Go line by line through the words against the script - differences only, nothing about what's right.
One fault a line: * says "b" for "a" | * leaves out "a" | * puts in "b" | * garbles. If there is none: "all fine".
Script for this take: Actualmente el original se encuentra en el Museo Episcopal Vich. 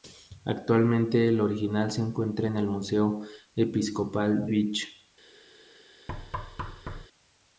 all fine